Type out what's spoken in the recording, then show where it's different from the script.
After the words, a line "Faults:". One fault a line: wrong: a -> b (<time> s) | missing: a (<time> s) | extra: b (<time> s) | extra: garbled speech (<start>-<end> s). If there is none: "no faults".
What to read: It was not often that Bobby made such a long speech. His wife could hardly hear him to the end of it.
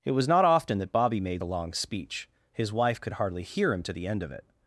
It was not often that Bobby made a long speech. His wife could hardly hear him to the end of it.
Faults:
missing: such (1.4 s)